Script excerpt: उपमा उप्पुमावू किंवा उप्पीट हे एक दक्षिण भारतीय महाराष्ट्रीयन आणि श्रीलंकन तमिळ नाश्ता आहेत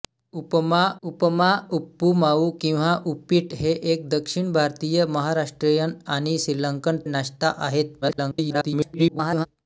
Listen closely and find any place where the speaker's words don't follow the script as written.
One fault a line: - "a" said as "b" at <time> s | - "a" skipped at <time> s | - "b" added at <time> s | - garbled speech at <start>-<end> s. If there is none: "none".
- "उपमा" added at 1.0 s
- "तमिळ" skipped at 7.0 s
- garbled speech at 8.0-9.5 s